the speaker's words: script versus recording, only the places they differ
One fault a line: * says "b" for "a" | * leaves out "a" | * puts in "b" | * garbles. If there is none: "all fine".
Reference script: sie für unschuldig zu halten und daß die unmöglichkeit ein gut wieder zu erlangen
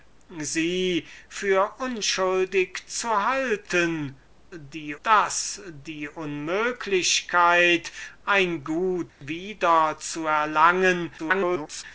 * says "die" for "und"
* garbles